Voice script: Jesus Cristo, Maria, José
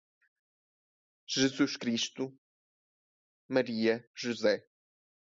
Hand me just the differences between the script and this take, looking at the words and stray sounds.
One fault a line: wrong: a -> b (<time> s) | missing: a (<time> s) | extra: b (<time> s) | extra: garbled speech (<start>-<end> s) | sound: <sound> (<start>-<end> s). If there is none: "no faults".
no faults